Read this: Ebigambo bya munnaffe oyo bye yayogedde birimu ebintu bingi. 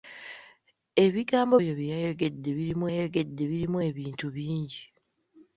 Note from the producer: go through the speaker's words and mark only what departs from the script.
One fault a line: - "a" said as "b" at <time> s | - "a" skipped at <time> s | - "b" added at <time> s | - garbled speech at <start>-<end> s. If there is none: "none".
- "bya munnaffe oyo bye" said as "oyo bye yayogedde birimu" at 1.6 s